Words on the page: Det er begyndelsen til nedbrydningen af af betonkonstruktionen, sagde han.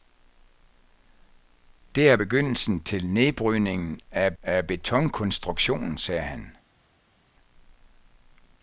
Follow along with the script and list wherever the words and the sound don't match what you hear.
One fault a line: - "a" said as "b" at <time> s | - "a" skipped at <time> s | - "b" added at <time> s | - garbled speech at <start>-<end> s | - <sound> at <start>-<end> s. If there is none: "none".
none